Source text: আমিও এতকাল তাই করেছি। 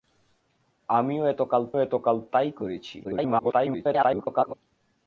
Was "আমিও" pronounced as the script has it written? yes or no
yes